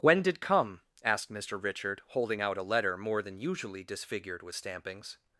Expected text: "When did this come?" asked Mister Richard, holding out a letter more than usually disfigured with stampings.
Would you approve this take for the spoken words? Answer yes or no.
no